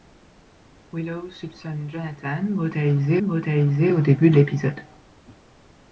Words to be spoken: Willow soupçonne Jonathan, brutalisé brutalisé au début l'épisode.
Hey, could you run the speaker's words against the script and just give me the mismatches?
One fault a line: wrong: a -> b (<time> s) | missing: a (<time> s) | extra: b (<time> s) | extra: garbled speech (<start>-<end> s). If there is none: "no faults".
no faults